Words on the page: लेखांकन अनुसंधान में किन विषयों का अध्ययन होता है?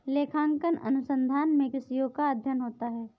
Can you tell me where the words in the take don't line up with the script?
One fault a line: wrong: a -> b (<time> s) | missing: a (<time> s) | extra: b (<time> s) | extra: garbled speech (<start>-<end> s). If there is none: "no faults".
missing: किन (1.7 s)